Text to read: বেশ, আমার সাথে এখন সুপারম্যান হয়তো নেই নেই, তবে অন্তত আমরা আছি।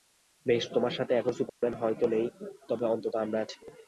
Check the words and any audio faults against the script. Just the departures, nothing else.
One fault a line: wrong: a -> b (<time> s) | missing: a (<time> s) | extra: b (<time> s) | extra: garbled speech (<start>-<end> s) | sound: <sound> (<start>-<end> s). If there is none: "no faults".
wrong: আমার -> তোমার (0.8 s)
sound: dropout (1.5-1.6 s)
missing: নেই (2.2 s)